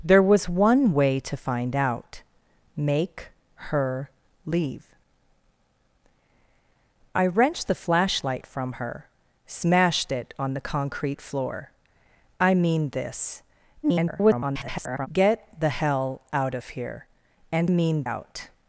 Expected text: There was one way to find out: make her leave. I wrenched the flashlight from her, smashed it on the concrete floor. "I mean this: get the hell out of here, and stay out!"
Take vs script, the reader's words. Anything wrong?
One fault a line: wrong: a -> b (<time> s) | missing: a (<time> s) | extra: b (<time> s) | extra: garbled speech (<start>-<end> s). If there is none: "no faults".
extra: garbled speech (13.8-15.1 s)
wrong: stay -> mean (17.7 s)